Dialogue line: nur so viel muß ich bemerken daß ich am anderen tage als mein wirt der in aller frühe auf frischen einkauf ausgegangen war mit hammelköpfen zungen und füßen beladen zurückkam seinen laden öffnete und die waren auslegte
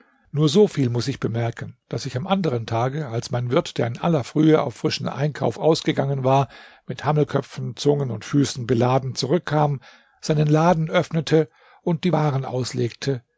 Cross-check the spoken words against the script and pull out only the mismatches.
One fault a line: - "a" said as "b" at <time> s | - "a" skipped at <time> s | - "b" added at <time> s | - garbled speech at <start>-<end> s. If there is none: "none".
none